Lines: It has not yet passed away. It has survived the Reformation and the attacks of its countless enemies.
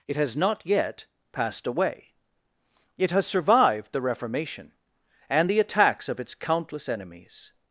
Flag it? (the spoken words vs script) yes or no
no